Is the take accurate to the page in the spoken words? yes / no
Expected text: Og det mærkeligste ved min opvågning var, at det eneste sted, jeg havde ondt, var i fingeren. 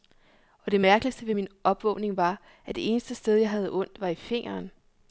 yes